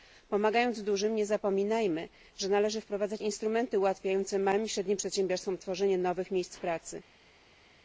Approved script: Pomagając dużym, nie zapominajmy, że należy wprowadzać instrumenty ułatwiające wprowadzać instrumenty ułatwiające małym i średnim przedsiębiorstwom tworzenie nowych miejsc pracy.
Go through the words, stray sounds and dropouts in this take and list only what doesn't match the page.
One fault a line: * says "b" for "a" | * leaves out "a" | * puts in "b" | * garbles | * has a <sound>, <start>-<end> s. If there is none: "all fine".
* leaves out "wprowadzać instrumenty ułatwiające"